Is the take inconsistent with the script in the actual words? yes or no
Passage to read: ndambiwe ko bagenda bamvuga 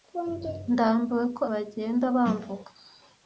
no